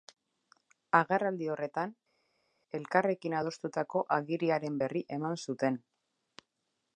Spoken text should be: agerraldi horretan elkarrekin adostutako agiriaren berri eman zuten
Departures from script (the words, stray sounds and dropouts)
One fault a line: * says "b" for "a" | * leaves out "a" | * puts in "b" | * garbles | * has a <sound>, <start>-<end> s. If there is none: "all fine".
all fine